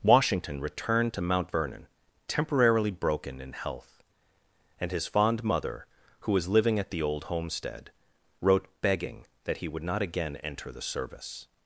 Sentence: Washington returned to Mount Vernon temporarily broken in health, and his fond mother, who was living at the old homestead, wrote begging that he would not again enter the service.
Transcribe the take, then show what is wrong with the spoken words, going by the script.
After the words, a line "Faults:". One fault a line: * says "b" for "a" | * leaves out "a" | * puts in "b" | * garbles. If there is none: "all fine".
Washington returned to Mount Vernon temporarily broken in health, and his fond mother, who was living at the old homestead, wrote begging that he would not again enter the service.
Faults:
all fine